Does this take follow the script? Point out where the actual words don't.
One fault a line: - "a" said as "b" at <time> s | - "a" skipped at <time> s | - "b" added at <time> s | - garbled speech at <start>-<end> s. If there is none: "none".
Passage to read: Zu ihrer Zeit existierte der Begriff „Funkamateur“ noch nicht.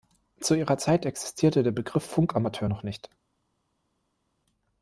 none